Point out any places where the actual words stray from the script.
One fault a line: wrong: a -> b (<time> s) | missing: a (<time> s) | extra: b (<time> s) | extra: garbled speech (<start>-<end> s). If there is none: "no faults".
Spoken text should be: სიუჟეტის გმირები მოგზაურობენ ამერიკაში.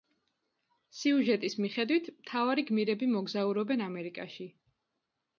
extra: მიხედვით მთავარი (1.6 s)